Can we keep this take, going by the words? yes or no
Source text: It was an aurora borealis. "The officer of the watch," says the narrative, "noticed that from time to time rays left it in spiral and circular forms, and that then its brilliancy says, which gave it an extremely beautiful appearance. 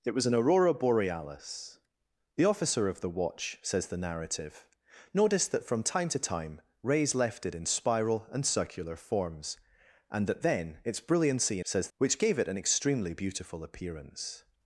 yes